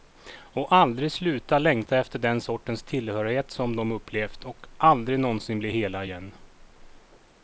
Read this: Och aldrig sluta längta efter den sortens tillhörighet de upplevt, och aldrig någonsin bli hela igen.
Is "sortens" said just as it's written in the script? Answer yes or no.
yes